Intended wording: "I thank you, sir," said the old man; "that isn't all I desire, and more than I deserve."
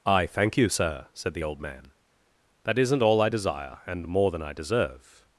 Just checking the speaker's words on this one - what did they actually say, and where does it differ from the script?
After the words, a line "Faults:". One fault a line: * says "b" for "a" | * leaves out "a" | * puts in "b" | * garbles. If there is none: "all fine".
"I thank you, sir," said the old man; "that isn't all I desire, and more than I deserve."
Faults:
all fine